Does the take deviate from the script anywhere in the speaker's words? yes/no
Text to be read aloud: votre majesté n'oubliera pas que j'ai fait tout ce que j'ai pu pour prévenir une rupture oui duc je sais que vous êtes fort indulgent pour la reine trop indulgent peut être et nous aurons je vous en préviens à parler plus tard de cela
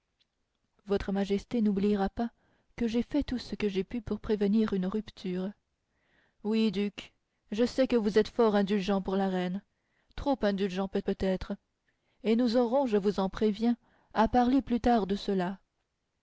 yes